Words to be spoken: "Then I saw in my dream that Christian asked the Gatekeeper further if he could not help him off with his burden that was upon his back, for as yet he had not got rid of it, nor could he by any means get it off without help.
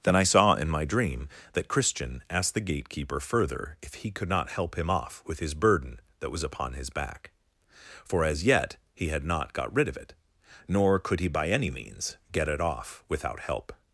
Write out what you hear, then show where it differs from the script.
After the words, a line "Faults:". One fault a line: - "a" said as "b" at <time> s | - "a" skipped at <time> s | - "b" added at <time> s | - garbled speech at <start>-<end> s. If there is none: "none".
"Then I saw in my dream that Christian asked the Gatekeeper further if he could not help him off with his burden that was upon his back, for as yet he had not got rid of it, nor could he by any means get it off without help.
Faults:
none